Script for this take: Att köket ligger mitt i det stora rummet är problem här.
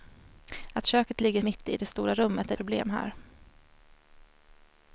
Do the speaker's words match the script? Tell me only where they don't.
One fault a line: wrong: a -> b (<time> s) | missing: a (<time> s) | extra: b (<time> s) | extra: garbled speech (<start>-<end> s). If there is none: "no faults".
no faults